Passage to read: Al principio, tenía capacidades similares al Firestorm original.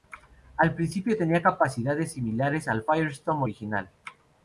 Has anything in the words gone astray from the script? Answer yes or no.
no